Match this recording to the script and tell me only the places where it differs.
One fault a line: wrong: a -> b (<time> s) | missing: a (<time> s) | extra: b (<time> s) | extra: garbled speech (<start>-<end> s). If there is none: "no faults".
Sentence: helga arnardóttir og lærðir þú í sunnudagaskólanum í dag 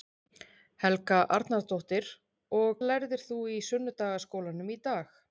no faults